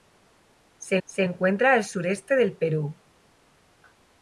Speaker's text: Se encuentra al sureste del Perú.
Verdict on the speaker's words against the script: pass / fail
fail